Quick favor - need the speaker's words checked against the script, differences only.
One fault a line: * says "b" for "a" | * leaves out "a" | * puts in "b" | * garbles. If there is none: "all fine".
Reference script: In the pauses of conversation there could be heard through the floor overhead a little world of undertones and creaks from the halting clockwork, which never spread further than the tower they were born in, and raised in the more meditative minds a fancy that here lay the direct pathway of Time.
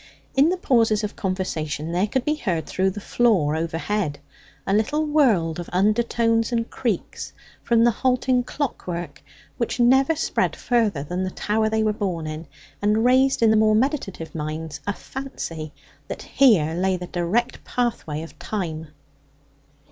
all fine